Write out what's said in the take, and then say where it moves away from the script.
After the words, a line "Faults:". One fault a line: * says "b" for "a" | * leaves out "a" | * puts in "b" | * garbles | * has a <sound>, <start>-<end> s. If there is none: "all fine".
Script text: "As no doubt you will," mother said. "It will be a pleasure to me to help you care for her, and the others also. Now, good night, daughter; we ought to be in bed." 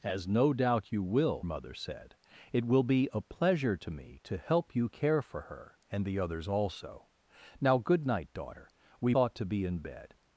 "As no doubt you will," mother said. "It will be a pleasure to me to help you care for her, and the others also. Now, good night, daughter; we ought to be in bed."
Faults:
all fine